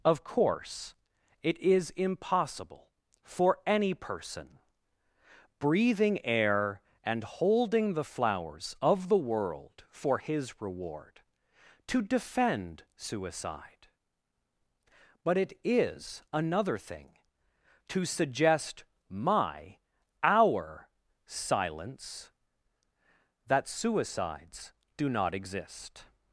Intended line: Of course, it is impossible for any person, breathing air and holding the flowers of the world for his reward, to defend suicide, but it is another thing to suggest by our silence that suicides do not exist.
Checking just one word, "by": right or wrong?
wrong